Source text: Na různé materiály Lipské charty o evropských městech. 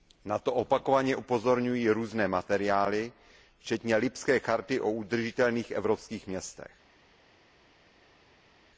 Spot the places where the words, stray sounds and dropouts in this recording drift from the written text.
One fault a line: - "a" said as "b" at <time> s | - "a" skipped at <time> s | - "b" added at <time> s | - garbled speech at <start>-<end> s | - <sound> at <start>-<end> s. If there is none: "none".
- "to opakovaně upozorňují" added at 0.4 s
- "včetně" added at 3.6 s
- "udržitelných" added at 4.9 s